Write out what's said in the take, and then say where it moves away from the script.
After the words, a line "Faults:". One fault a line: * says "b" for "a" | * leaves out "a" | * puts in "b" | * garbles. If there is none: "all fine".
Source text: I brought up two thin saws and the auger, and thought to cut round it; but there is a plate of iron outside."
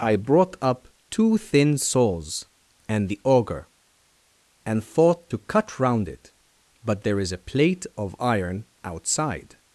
I brought up two thin saws and the auger, and thought to cut round it; but there is a plate of iron outside."
Faults:
all fine